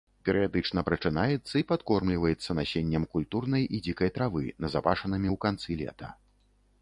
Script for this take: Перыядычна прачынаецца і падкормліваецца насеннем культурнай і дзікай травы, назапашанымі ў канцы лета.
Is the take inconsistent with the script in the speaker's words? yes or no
no